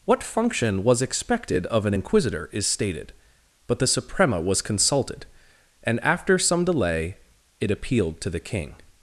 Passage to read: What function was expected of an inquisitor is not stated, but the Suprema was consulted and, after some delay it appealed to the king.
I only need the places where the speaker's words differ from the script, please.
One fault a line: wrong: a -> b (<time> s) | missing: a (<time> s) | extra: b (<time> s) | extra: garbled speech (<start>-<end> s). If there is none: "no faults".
missing: not (2.7 s)